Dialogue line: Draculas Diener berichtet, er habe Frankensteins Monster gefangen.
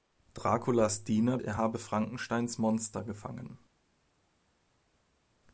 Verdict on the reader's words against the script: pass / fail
fail